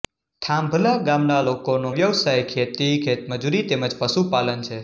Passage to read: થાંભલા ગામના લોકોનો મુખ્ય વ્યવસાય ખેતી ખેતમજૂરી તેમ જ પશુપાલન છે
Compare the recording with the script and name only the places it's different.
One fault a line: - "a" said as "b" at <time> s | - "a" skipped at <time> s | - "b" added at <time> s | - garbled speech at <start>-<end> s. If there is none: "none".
- "મુખ્ય" skipped at 1.9 s